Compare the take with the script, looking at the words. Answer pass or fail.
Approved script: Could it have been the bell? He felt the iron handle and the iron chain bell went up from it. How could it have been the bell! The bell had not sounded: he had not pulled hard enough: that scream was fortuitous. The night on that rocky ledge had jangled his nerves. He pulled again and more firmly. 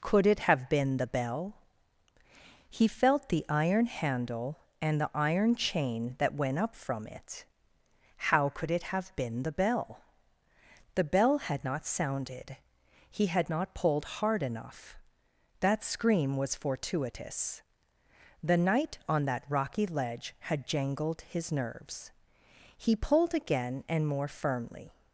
fail